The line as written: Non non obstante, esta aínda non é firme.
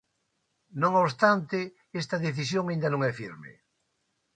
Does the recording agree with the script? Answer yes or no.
no